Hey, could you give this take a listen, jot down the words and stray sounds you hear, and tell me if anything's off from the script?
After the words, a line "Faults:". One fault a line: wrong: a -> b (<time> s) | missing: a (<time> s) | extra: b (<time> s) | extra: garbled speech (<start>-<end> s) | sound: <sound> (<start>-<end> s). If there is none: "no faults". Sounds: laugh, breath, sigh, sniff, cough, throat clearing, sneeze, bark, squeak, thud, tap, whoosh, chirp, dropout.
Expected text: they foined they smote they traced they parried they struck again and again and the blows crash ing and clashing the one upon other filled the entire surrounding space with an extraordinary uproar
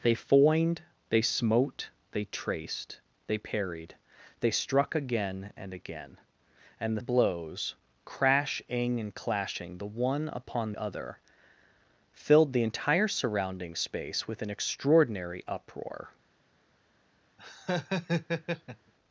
they foined they smote they traced they parried they struck again and again and the blows crash ing and clashing the one upon other filled the entire surrounding space with an extraordinary uproar
Faults:
sound: laugh (17.4-18.9 s)